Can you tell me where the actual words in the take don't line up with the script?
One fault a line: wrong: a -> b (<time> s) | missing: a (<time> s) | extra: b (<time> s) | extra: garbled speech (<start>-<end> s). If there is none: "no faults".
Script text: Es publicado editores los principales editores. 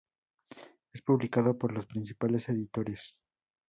wrong: editores -> por (1.6 s)